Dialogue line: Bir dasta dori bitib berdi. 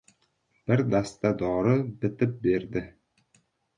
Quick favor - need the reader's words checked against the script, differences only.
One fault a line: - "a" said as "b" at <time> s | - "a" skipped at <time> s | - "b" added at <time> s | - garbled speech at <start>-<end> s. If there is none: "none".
none